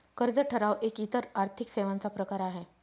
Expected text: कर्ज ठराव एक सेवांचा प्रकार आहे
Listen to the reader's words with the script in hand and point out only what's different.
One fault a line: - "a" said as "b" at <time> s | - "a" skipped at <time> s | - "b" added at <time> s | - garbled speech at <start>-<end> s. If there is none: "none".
- "इतर आर्थिक" added at 1.0 s